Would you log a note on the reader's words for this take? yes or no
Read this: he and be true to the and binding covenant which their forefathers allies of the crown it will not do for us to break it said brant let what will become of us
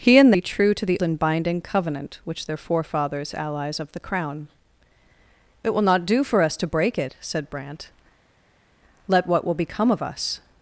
no